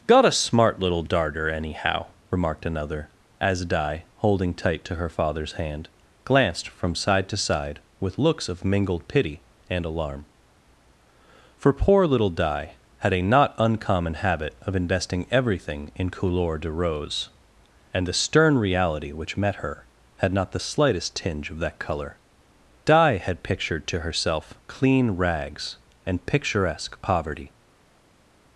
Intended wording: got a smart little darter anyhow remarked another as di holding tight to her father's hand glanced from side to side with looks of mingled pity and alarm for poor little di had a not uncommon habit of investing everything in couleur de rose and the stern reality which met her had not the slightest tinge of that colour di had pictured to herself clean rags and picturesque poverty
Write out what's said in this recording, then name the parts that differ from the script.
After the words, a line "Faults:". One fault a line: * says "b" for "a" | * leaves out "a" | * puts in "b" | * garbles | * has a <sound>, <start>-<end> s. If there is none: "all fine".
got a smart little darter anyhow remarked another as di holding tight to her father's hand glanced from side to side with looks of mingled pity and alarm for poor little di had a not uncommon habit of investing everything in couleur de rose and the stern reality which met her had not the slightest tinge of that colour di had pictured to herself clean rags and picturesque poverty
Faults:
all fine